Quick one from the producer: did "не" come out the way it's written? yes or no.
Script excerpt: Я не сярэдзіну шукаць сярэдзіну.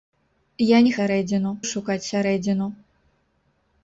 yes